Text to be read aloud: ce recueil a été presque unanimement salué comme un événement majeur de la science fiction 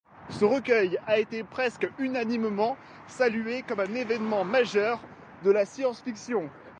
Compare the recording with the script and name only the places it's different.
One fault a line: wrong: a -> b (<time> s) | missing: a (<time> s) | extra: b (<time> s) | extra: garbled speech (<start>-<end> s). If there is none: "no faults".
no faults